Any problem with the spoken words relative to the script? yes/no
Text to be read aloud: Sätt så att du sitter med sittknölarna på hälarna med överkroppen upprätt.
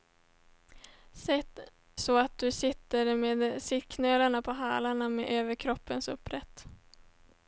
no